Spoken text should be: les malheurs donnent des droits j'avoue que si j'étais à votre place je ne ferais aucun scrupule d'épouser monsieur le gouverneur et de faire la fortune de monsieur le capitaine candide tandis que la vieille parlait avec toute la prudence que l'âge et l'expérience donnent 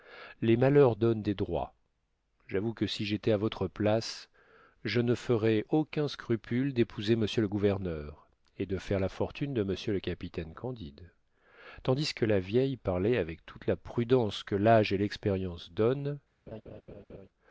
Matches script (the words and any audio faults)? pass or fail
fail